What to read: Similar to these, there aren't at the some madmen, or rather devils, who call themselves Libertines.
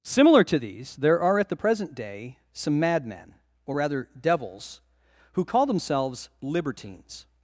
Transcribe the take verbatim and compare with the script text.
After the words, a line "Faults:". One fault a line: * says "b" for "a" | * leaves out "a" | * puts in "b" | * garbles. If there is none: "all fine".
Similar to these, there are at the present day some madmen, or rather devils, who call themselves Libertines.
Faults:
* says "are" for "aren't"
* puts in "present day"